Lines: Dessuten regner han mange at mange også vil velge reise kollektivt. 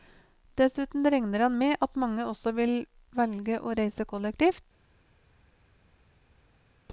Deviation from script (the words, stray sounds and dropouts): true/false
true